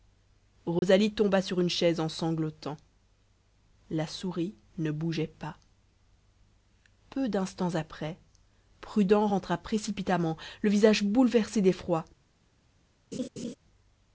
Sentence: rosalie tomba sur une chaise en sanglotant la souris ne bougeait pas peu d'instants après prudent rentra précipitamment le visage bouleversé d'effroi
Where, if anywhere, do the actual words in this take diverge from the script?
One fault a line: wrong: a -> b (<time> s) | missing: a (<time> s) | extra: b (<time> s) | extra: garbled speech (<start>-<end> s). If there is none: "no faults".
no faults